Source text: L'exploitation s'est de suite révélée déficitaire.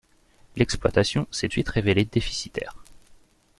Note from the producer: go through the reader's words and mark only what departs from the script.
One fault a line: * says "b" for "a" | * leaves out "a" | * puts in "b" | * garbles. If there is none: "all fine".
all fine